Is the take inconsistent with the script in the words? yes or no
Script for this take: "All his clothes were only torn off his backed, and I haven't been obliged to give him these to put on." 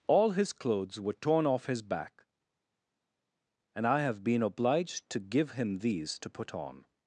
yes